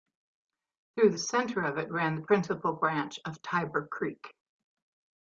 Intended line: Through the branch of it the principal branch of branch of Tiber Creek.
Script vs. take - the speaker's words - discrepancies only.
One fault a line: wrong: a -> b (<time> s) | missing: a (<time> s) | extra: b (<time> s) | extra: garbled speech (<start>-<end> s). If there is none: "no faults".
wrong: branch -> center (1.2 s)
extra: ran (1.9 s)
missing: branch of (3.4 s)